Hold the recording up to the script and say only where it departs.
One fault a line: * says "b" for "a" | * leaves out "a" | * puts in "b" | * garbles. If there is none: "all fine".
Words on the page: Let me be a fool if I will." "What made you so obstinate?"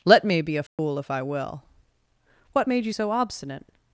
all fine